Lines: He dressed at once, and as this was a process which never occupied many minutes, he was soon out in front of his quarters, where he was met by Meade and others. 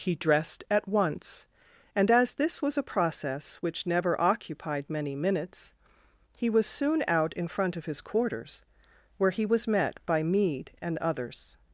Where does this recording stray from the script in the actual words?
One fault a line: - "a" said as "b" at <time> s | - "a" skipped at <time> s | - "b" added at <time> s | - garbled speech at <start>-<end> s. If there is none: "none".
none